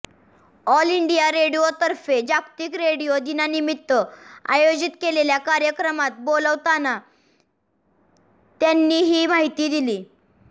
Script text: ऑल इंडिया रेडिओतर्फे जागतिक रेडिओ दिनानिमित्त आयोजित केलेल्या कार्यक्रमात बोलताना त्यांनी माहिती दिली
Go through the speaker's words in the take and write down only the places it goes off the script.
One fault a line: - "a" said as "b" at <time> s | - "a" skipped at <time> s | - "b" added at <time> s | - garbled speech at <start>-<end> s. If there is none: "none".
- "ही" added at 9.0 s